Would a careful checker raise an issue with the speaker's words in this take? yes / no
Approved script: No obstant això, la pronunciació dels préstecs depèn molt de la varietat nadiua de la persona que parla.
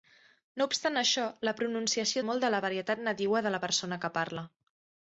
yes